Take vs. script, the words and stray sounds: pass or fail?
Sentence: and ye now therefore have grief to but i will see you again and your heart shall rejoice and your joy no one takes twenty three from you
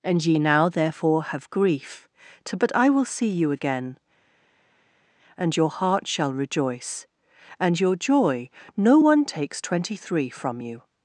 pass